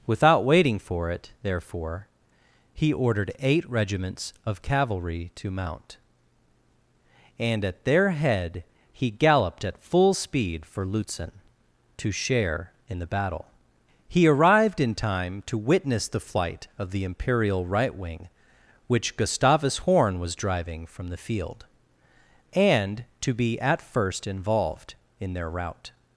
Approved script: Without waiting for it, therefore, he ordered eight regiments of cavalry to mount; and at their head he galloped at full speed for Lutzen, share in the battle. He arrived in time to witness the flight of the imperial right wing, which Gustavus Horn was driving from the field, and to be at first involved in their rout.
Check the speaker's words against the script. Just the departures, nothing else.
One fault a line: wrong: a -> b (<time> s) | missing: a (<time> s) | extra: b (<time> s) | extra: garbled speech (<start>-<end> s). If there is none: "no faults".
extra: to (12.0 s)